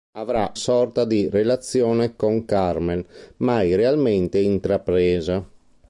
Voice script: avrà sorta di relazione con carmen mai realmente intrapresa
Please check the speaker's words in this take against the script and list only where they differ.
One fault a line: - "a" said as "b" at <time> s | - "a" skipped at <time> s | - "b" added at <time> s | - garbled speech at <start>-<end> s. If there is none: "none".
none